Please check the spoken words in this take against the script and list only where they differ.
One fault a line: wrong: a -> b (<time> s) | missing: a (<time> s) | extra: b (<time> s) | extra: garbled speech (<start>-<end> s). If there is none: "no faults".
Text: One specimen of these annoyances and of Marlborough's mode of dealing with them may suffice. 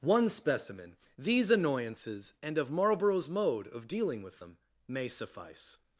missing: of (1.0 s)